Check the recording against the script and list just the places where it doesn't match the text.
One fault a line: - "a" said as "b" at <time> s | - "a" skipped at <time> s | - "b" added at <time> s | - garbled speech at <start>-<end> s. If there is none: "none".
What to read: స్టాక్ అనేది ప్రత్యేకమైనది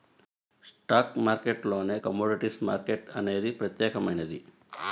- "మార్కెట్టులోనే కమోడిటీస్ మార్కెట్" added at 1.2 s